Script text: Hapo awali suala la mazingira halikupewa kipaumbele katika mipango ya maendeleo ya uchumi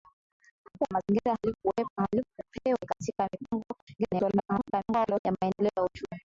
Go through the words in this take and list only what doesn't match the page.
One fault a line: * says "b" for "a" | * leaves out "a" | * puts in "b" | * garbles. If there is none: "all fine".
* leaves out "awali suala la"
* leaves out "kipaumbele"
* garbles